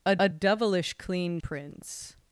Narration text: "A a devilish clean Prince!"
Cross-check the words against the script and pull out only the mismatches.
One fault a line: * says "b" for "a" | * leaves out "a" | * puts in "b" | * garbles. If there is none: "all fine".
all fine